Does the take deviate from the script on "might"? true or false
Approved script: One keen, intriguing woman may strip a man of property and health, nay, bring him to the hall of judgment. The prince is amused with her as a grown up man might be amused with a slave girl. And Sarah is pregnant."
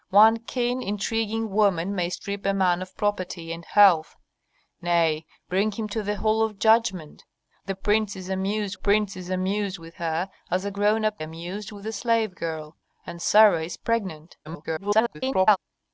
true